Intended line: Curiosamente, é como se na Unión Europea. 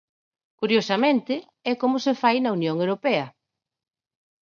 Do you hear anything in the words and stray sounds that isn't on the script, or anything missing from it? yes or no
yes